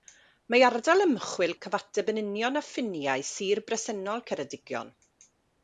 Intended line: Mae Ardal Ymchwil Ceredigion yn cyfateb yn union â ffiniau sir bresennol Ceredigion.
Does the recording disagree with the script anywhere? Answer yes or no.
yes